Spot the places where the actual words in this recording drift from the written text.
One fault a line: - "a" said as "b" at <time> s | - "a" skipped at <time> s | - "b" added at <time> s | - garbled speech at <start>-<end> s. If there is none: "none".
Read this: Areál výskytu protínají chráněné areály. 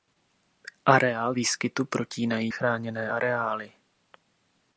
none